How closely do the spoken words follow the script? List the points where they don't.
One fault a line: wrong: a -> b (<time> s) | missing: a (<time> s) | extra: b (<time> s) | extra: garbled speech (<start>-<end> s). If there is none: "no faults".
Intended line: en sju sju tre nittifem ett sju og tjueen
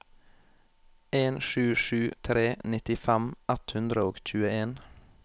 wrong: sju -> hundre (3.8 s)